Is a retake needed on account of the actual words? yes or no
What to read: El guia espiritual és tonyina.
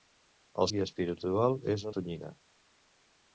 no